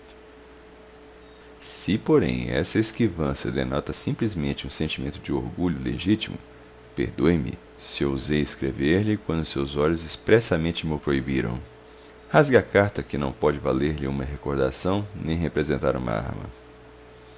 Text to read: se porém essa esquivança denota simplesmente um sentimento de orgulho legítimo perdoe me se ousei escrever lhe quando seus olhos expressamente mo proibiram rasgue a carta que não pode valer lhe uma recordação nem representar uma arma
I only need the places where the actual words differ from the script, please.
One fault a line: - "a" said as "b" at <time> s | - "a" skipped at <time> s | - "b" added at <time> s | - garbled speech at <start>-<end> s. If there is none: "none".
none